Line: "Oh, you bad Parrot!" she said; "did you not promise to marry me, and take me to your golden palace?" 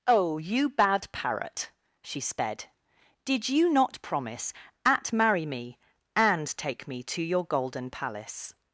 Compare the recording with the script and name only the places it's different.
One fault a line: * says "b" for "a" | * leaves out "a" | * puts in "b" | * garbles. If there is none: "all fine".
* says "sped" for "said"
* says "at" for "to"